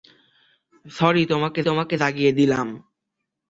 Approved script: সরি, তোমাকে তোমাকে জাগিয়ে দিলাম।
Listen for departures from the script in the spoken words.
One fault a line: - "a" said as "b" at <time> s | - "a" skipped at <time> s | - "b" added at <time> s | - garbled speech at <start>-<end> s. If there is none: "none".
none